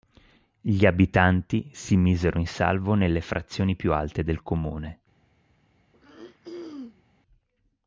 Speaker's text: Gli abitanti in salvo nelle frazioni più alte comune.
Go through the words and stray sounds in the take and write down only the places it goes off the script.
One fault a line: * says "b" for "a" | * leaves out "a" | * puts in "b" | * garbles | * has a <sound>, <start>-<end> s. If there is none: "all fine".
* puts in "si misero"
* puts in "del"
* has a throat clearing, 5.9-7.0 s